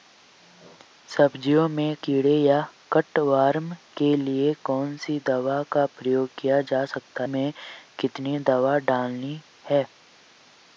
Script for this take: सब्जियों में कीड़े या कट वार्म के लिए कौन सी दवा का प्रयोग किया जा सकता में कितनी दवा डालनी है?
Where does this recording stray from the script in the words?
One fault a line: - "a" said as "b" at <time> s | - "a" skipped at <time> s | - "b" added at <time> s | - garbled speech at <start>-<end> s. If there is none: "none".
none